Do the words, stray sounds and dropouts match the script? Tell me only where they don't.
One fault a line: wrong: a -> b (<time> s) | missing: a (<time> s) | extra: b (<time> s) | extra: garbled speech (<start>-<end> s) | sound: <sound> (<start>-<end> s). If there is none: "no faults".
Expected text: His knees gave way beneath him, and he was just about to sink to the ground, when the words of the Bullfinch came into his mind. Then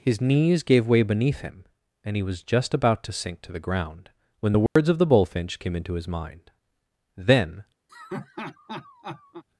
sound: dropout (4.7-4.8 s)
sound: laugh (7.9-9.4 s)